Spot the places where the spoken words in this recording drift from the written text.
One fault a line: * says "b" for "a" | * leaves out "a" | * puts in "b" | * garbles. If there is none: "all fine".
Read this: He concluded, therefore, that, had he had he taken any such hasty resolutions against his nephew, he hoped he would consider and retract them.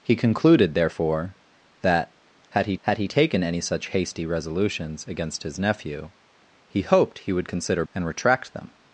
all fine